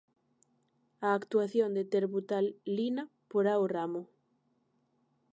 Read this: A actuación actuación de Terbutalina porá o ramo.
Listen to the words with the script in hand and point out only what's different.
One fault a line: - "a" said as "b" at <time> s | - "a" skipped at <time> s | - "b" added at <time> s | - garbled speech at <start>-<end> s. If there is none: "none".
- "actuación" skipped at 1.8 s